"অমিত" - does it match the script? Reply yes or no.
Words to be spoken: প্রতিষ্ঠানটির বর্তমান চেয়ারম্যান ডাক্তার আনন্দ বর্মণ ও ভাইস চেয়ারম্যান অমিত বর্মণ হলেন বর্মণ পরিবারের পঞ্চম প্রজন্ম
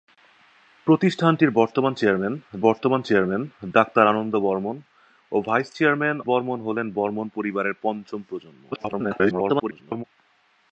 no